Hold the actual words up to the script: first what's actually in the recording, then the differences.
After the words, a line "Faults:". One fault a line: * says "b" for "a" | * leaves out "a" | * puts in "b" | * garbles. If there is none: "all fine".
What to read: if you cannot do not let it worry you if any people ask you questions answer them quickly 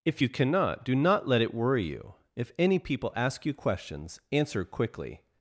if you cannot do not let it worry you if any people ask you questions answer quickly
Faults:
* leaves out "them"